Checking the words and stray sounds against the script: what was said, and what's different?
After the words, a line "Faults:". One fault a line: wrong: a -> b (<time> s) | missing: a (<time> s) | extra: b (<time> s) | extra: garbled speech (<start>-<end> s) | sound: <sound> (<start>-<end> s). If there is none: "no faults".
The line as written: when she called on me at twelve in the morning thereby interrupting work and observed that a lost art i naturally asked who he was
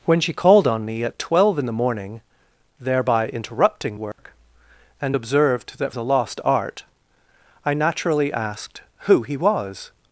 when she called on me at twelve in the morning thereby interrupting work and observed that a lost art i naturally asked who he was
Faults:
sound: dropout (4.1-4.2 s)